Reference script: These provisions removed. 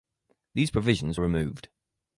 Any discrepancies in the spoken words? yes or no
no